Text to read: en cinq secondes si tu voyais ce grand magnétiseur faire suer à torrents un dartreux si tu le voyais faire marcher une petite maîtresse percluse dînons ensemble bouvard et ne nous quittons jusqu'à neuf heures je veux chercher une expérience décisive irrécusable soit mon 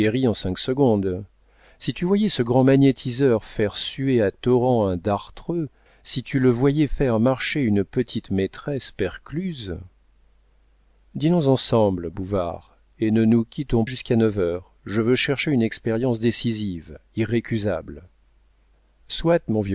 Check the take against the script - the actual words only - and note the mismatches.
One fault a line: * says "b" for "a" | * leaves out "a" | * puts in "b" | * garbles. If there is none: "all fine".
all fine